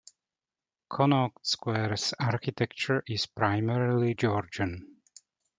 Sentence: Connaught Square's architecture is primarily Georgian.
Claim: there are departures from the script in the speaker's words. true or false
false